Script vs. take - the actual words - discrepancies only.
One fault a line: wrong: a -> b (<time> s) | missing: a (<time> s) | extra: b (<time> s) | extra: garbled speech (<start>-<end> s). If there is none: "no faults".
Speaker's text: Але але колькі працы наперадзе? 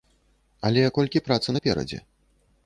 missing: але (0.8 s)